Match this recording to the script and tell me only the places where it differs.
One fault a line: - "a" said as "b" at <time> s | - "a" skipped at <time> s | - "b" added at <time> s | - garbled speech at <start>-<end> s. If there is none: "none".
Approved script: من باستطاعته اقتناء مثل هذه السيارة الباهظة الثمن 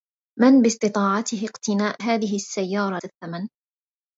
- "مثل" skipped at 2.0 s
- "الباهظة" skipped at 3.0 s